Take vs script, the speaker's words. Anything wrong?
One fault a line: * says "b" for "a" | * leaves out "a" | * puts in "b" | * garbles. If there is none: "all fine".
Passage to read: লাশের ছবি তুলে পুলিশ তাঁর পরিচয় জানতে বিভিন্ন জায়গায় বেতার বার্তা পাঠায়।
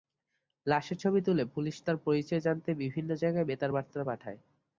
all fine